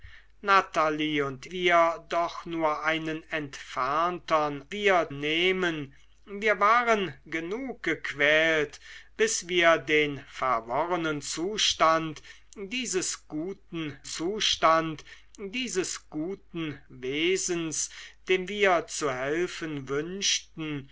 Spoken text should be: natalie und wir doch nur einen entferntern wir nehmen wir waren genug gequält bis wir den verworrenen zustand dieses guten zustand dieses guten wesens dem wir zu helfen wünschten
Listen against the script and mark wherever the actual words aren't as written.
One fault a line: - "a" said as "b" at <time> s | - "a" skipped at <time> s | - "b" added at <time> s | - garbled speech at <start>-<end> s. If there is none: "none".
none